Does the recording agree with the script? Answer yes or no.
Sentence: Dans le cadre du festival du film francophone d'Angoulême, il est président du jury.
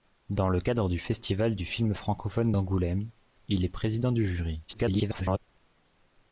no